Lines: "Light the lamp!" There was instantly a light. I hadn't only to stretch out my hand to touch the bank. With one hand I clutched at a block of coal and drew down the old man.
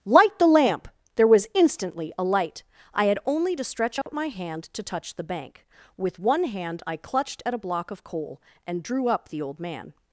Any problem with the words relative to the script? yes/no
yes